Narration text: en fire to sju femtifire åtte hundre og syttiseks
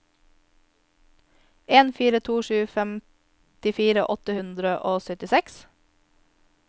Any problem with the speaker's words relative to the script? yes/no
no